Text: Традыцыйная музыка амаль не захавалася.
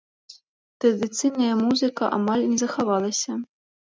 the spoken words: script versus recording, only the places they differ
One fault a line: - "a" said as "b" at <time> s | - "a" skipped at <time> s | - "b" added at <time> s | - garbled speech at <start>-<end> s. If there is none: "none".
none